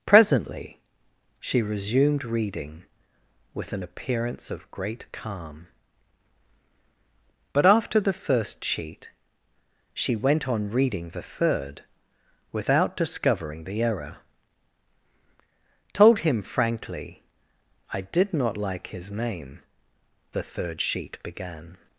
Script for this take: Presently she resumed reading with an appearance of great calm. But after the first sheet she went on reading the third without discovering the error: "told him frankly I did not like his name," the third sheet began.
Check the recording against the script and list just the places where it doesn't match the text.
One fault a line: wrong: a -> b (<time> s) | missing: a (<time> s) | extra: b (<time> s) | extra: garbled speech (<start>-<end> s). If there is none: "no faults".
no faults